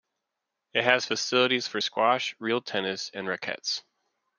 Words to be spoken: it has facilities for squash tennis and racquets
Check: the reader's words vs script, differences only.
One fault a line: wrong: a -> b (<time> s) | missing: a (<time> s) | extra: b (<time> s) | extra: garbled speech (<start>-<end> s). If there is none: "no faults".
extra: real (2.4 s)